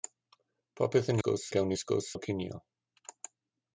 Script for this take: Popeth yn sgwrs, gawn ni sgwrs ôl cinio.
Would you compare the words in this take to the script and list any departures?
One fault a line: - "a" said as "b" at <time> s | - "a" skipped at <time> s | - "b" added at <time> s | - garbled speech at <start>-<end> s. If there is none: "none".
none